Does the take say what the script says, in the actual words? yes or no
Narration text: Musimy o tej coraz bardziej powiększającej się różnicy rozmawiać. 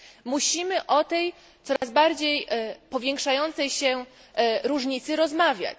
yes